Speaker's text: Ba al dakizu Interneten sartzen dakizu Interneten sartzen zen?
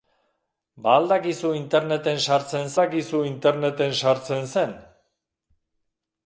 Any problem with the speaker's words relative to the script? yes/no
no